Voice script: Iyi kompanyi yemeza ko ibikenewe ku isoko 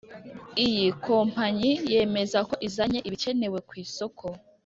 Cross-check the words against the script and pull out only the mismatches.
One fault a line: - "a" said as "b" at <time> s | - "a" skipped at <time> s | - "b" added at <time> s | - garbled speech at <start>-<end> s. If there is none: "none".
- "izanye" added at 2.7 s